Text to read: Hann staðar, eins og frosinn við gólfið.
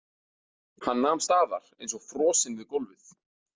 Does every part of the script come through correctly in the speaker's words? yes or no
no